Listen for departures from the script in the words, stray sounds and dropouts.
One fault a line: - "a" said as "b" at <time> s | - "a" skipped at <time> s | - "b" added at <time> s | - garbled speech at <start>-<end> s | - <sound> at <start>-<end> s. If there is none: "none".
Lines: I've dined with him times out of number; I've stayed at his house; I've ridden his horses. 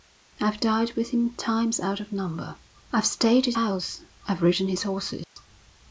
- "his" skipped at 3.5 s
- dropout at 5.2-5.4 s